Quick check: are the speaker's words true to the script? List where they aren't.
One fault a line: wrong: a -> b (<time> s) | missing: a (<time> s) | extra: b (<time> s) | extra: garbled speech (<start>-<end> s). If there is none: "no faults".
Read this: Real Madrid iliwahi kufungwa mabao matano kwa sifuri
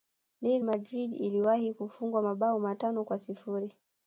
no faults